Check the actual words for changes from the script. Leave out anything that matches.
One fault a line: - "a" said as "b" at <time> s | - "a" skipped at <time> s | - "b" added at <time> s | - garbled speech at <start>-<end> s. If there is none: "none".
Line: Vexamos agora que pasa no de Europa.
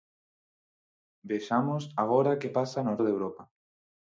none